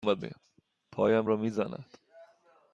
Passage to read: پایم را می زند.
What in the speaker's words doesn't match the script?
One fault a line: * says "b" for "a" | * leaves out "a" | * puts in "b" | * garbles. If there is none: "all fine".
all fine